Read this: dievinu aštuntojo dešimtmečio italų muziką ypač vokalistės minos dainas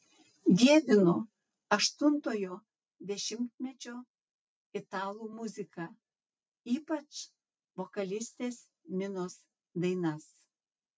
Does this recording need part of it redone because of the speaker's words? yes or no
no